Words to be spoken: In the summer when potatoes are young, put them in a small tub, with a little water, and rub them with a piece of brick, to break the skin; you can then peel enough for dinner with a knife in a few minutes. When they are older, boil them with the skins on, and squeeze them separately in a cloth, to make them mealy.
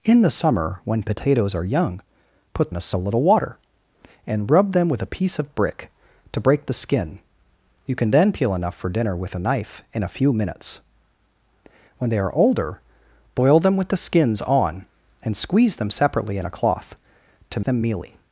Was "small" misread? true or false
true